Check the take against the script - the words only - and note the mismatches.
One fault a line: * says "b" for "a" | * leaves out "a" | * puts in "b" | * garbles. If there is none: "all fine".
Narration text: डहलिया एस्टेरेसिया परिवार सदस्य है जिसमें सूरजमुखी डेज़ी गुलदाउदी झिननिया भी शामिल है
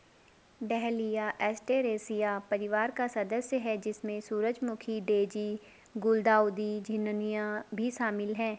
* puts in "का"